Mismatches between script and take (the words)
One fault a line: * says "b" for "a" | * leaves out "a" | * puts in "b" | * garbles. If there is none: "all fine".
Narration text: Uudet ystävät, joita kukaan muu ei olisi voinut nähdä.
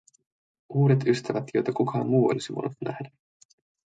* leaves out "ei"